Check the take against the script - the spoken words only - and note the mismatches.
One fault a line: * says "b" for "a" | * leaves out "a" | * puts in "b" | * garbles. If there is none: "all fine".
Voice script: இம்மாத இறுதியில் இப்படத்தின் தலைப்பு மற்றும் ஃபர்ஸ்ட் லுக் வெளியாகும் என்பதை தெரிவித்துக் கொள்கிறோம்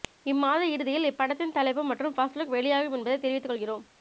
all fine